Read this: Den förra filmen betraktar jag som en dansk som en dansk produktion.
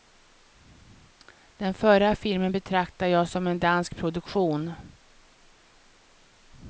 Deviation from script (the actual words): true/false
true